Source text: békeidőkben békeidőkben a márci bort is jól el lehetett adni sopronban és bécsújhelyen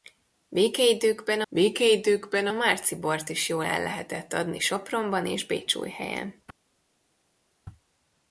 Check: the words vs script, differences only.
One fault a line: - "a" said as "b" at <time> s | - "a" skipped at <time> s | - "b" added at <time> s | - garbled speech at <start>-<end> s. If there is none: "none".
none